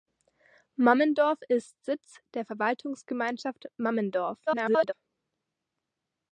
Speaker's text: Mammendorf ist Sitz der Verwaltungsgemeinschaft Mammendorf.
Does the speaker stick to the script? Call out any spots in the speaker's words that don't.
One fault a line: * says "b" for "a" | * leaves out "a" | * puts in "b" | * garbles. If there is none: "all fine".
* garbles